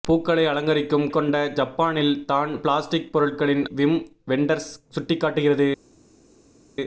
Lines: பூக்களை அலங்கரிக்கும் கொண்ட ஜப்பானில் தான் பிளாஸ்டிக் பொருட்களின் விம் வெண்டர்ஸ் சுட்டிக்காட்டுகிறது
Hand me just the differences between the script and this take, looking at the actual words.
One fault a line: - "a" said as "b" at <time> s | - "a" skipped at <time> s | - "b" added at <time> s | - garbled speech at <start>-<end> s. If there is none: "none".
none